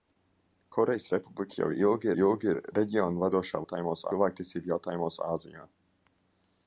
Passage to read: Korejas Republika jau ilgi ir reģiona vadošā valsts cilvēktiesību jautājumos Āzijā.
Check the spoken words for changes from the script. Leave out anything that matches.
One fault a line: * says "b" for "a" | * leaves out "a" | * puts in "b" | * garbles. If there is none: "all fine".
* puts in "ilgi"
* says "jautājumos" for "valsts"